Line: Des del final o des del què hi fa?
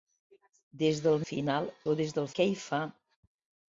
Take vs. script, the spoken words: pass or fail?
pass